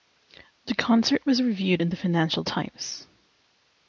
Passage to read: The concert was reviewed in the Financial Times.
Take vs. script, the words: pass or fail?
pass